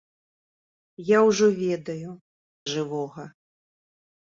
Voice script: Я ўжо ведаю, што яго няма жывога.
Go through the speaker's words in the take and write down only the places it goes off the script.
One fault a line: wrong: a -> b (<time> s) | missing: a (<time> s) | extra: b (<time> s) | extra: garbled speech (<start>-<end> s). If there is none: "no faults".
missing: што яго няма (2.1 s)